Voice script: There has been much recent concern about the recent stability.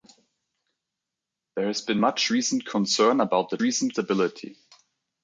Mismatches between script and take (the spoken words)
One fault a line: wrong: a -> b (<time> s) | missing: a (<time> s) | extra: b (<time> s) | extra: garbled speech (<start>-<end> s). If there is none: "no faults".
no faults